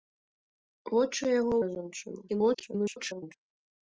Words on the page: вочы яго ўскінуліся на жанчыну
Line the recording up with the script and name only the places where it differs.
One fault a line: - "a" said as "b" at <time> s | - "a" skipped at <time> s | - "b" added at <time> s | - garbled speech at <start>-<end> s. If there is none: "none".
- "ўскінуліся" skipped at 1.5 s
- garbled speech at 2.3-3.3 s